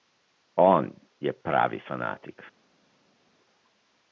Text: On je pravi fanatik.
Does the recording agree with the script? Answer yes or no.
yes